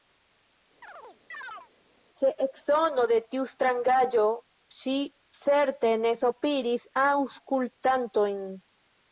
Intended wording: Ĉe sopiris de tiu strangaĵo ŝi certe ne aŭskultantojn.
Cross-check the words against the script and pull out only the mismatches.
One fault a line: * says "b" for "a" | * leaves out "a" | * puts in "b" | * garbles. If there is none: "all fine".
* says "eksono" for "sopiris"
* puts in "sopiris"